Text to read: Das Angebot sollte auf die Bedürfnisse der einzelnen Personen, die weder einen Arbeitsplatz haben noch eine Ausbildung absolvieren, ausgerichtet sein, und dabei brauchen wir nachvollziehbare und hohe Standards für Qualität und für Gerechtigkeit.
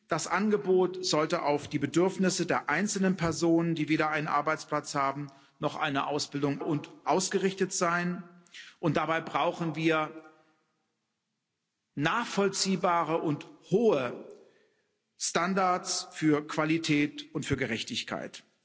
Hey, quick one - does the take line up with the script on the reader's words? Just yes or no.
no